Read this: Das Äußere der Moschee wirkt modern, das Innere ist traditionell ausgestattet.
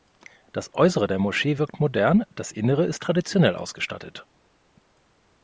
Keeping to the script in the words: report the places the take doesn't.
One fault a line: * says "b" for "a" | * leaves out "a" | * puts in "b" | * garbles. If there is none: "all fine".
all fine